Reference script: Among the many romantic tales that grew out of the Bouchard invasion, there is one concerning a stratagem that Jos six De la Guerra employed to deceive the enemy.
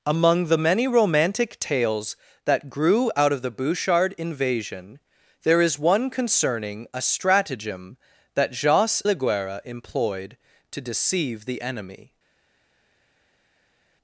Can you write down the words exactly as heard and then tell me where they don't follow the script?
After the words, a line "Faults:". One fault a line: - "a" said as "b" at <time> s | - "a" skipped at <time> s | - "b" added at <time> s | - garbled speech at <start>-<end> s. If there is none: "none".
Among the many romantic tales that grew out of the Bouchard invasion, there is one concerning a stratagem that Jos la Guerra employed to deceive the enemy.
Faults:
- "six De" skipped at 9.0 s